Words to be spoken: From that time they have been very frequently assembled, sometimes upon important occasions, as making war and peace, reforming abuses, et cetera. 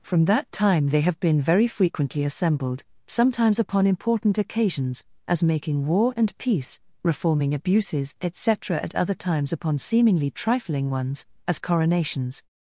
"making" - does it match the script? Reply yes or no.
yes